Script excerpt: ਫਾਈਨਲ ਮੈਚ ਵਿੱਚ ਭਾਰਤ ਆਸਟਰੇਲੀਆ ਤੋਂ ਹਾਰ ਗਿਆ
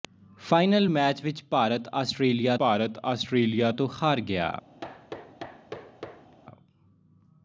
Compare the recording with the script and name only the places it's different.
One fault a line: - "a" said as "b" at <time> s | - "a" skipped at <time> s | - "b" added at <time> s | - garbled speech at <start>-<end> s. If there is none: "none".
- "ਭਾਰਤ ਆਸਟਰੇਲੀਆ" added at 2.6 s